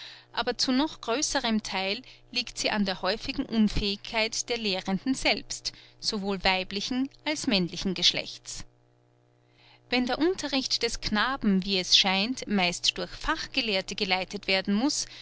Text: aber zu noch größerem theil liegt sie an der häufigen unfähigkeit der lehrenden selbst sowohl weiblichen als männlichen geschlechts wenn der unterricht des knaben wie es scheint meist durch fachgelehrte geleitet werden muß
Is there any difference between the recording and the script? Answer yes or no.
no